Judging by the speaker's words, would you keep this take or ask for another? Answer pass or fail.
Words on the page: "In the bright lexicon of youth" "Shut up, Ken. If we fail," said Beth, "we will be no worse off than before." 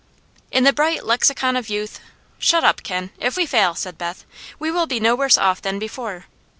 pass